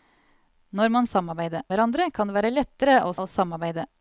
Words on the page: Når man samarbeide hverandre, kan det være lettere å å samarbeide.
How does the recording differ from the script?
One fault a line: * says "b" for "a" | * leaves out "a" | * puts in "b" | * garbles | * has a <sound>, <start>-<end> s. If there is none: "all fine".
all fine